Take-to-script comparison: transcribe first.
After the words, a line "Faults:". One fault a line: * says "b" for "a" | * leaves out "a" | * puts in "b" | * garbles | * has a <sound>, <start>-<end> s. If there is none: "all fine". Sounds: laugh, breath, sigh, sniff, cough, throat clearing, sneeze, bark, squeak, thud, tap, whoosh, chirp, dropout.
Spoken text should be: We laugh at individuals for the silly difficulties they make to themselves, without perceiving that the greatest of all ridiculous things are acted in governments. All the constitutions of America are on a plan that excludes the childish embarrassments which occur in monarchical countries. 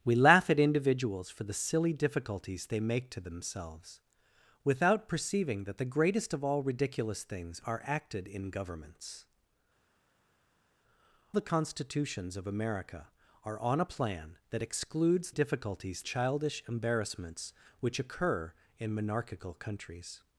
We laugh at individuals for the silly difficulties they make to themselves, without perceiving that the greatest of all ridiculous things are acted in governments. The constitutions of America are on a plan that excludes difficulties childish embarrassments which occur in monarchical countries.
Faults:
* leaves out "All"
* says "difficulties" for "the"